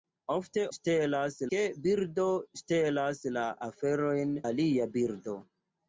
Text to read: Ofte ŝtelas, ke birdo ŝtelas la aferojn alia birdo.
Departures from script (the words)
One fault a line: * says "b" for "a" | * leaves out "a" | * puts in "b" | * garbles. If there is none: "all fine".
all fine